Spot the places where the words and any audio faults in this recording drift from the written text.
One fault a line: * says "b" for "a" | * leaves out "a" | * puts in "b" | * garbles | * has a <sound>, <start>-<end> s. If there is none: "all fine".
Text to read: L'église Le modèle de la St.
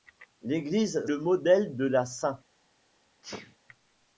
* has a sneeze, 3.2-3.6 s